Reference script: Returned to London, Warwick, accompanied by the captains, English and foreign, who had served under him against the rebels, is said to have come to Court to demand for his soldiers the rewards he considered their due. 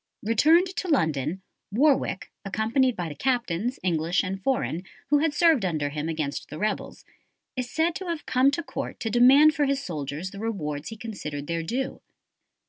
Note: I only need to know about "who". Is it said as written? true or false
true